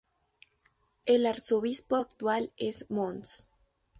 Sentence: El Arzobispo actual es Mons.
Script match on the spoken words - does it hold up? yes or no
yes